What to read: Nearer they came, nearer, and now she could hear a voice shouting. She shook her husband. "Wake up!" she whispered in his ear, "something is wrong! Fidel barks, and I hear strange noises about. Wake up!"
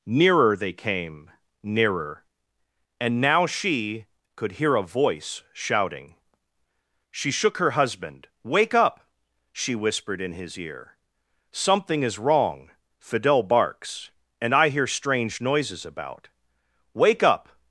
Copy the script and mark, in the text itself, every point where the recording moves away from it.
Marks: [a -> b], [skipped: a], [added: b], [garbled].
Nearer they came, nearer, and now she could hear a voice shouting. She shook her husband. "Wake up!" she whispered in his ear, "something is wrong! Fidel barks, and I hear strange noises about. Wake up!"